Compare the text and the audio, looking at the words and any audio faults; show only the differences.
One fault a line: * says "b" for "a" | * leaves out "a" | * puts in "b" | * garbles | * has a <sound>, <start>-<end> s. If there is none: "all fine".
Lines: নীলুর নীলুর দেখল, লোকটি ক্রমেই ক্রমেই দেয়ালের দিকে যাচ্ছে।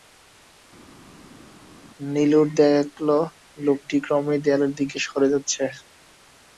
* leaves out "নীলুর"
* leaves out "ক্রমেই"
* puts in "সরে"